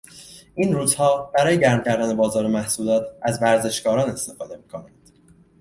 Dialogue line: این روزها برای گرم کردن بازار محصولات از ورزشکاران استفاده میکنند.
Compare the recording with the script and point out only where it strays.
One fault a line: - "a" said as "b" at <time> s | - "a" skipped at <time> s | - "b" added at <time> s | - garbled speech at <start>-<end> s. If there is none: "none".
none